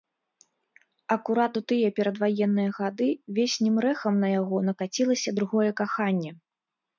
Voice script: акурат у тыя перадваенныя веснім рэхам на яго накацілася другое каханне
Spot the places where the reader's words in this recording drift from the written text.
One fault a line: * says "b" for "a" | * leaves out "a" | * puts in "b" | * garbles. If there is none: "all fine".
* puts in "гады"